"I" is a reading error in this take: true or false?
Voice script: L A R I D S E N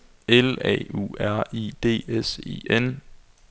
false